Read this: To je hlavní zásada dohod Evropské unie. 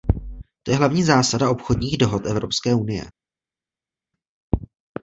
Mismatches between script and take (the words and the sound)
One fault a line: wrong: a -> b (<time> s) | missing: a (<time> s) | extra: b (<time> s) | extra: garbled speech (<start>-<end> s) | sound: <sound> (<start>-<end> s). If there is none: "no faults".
extra: obchodních (1.5 s)